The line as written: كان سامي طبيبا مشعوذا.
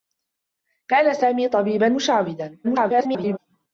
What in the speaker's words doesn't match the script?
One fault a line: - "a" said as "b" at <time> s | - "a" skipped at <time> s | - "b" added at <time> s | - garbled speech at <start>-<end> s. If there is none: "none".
- garbled speech at 2.6-3.4 s